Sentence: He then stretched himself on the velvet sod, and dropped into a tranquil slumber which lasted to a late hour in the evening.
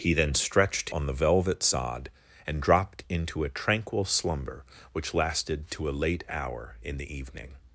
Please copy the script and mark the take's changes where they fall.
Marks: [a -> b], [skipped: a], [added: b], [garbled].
He then stretched [skipped: himself] on the velvet sod, and dropped into a tranquil slumber which lasted to a late hour in the evening.